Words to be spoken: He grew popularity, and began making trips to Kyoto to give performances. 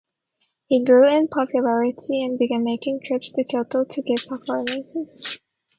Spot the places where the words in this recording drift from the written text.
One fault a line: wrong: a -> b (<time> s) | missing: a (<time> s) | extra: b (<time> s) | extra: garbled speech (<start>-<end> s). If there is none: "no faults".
extra: in (1.1 s)